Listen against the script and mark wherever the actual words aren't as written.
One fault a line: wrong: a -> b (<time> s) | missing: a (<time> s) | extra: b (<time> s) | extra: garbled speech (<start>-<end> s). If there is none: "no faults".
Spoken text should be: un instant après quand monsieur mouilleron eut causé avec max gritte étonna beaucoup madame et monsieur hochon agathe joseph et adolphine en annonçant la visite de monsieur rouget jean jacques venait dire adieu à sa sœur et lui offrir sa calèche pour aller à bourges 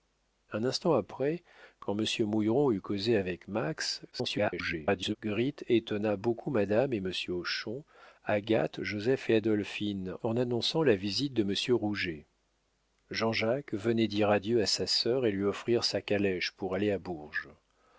extra: garbled speech (4.1-5.2 s)